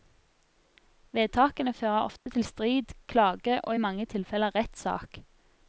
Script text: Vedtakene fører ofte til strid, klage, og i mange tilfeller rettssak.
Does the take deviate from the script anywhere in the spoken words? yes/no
no